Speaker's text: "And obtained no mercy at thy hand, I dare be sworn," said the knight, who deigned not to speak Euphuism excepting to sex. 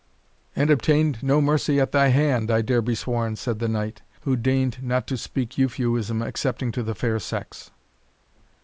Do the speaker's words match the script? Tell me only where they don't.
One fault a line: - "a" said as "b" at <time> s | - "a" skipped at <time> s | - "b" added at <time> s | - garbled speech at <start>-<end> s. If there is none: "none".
- "the fair" added at 6.8 s